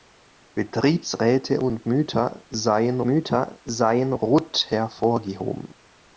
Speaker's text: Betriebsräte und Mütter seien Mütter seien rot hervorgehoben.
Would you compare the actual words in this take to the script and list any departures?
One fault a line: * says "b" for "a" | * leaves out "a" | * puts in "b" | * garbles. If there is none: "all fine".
all fine